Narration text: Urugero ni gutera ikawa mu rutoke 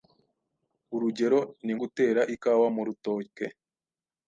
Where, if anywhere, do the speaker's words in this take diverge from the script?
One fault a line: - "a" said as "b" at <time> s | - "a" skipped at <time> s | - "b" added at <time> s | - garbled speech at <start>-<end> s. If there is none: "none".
none